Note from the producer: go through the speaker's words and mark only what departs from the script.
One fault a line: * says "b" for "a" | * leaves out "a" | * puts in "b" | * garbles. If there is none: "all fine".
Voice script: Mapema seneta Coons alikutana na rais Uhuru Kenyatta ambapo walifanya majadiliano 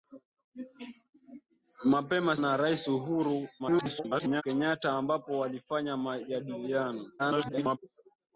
* leaves out "seneta Coons alikutana"
* garbles
* garbles